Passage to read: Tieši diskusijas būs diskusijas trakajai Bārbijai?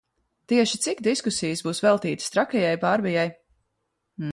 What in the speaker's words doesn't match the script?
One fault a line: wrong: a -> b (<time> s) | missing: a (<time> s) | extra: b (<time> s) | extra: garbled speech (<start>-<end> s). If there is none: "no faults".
extra: cik (0.8 s)
wrong: diskusijas -> veltītas (1.8 s)